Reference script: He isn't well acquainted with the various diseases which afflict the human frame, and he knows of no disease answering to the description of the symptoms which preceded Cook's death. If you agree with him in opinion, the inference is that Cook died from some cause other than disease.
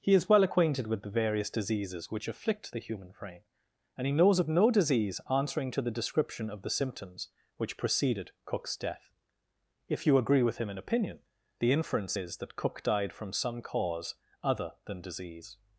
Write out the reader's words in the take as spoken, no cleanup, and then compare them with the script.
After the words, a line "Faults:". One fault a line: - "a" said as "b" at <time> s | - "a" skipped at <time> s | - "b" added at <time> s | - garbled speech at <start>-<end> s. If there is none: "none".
He is well acquainted with the various diseases which afflict the human frame, and he knows of no disease answering to the description of the symptoms which preceded Cook's death. If you agree with him in opinion, the inference is that Cook died from some cause other than disease.
Faults:
- "isn't" said as "is" at 0.1 s